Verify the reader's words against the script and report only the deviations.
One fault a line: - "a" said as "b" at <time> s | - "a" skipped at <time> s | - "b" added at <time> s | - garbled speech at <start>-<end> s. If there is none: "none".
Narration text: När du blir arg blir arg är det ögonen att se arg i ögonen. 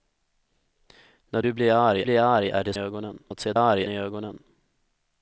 none